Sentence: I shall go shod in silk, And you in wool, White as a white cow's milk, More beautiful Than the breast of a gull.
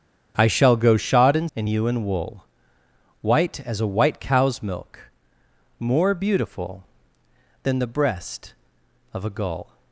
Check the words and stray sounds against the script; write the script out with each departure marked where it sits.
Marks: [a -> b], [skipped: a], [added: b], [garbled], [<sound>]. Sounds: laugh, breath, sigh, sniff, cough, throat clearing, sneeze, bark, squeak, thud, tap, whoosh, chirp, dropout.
I shall go shod in [skipped: silk,] And you in wool, White as a white cow's milk, More beautiful Than the breast of a gull.